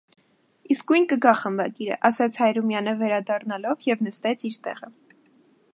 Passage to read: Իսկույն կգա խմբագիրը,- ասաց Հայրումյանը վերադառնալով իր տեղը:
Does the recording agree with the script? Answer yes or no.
no